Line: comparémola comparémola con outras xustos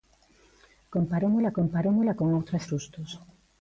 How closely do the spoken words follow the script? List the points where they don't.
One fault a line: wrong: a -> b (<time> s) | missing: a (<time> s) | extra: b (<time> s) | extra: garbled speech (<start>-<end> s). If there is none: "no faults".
no faults